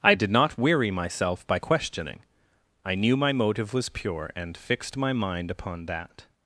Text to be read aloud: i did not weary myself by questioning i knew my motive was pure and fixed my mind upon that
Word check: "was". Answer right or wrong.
right